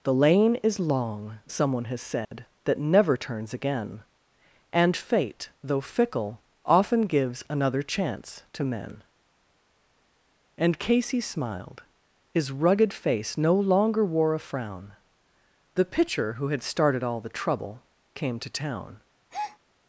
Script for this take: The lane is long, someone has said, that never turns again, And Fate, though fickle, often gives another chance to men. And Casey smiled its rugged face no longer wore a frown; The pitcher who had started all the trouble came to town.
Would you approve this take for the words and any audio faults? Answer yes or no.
no